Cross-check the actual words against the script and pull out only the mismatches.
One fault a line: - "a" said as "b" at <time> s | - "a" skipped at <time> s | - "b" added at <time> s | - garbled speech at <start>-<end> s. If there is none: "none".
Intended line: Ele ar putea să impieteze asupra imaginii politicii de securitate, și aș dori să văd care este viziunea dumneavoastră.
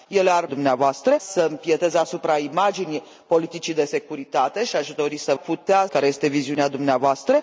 - "putea" said as "dumneavoastră" at 0.5 s
- "văd" said as "putea" at 5.3 s